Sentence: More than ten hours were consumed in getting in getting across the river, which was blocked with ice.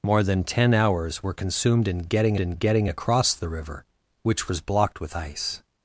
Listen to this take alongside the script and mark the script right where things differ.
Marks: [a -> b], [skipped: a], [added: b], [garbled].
More than ten hours were consumed in getting in getting across the river, which was blocked with ice.